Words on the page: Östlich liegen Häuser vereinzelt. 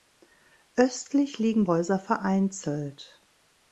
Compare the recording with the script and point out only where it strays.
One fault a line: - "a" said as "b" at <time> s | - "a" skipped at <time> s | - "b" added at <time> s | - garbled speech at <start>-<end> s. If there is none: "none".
none